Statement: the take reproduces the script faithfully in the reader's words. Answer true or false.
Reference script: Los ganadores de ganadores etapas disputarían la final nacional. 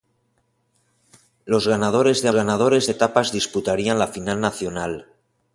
true